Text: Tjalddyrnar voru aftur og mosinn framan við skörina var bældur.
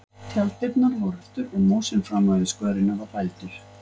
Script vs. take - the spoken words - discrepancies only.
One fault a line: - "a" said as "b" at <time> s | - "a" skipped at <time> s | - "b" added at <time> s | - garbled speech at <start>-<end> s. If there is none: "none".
none